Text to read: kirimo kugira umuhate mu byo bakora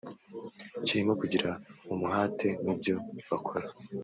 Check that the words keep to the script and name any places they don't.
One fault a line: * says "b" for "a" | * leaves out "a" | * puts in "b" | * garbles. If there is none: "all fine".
all fine